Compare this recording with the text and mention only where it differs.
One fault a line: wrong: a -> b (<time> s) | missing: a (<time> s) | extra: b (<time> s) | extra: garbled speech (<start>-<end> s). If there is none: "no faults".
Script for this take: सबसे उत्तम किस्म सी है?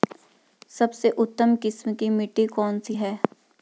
extra: की मिट्टी कौन (1.9 s)